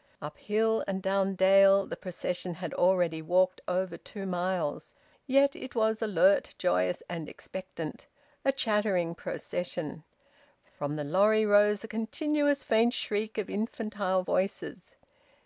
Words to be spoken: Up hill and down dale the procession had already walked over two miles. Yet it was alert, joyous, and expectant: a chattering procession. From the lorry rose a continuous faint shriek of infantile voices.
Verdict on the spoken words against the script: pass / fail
pass